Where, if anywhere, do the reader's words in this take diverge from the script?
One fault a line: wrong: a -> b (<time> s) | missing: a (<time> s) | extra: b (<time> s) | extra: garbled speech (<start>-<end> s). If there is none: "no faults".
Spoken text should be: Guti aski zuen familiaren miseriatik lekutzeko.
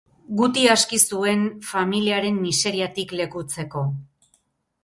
no faults